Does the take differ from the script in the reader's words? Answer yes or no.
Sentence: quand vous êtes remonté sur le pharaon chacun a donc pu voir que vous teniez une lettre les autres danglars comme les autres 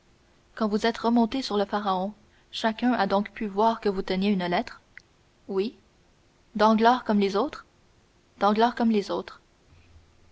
yes